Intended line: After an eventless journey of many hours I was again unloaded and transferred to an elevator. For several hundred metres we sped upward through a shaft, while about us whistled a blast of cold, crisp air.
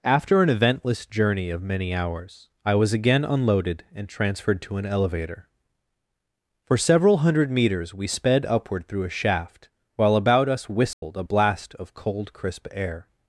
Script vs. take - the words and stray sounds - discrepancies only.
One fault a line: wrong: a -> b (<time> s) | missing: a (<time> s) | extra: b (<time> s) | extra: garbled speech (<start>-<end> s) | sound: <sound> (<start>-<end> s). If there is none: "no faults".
sound: dropout (10.9-11.0 s)